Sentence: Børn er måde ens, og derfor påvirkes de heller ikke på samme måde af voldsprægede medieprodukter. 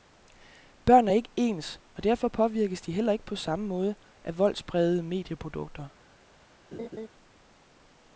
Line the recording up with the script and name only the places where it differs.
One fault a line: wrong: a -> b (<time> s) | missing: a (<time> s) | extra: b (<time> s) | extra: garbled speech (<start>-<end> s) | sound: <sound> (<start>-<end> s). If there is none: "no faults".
wrong: måde -> ikke (1.1 s)
sound: laugh (6.7-7.1 s)